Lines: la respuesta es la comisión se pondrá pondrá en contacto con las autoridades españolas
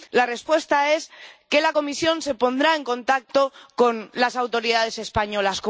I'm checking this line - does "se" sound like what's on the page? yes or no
yes